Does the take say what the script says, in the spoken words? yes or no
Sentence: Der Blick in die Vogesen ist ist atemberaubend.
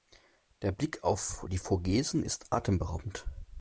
no